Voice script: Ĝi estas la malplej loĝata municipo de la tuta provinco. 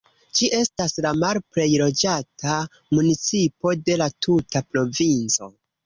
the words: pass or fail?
pass